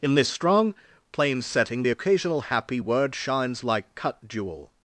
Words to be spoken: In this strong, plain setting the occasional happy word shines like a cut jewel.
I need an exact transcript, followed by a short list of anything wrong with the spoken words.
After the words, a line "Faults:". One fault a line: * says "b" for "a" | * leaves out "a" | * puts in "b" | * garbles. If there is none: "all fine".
In this strong, plain setting the occasional happy word shines like cut jewel.
Faults:
* leaves out "a"